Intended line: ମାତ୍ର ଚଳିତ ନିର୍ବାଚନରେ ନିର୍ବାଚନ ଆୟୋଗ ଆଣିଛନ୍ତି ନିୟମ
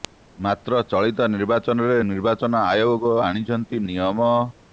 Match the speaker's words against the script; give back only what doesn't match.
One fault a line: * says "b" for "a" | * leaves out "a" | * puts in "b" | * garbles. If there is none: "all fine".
all fine